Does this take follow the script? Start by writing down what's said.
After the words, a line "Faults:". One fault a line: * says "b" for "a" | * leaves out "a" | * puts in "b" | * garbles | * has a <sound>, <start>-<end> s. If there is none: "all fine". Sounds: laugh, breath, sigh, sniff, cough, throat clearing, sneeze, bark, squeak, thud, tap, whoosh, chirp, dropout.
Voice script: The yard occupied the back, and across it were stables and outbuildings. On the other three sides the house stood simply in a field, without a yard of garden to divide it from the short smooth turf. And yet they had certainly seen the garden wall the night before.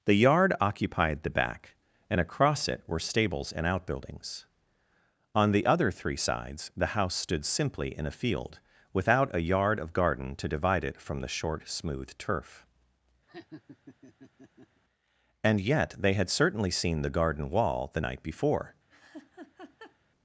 The yard occupied the back, and across it were stables and outbuildings. On the other three sides the house stood simply in a field, without a yard of garden to divide it from the short smooth turf. And yet they had certainly seen the garden wall the night before.
Faults:
* has a laugh, 13.3-14.8 s
* has a laugh, 18.9-20.0 s